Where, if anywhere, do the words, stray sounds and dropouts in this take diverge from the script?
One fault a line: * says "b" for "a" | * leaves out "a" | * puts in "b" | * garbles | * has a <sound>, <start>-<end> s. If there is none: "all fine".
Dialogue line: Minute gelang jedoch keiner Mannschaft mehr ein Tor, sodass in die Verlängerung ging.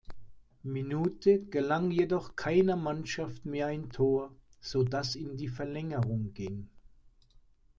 all fine